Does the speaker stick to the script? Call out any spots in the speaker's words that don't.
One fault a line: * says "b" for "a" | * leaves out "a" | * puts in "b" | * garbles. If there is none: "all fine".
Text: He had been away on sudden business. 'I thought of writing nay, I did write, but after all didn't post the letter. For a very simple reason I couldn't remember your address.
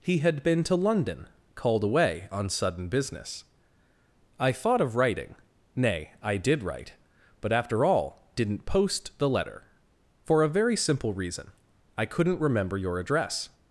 * puts in "to London called"